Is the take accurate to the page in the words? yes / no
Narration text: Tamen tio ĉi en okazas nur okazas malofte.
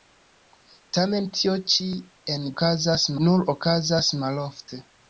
yes